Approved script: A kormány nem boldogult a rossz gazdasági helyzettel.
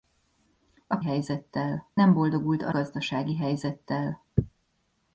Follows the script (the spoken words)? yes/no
no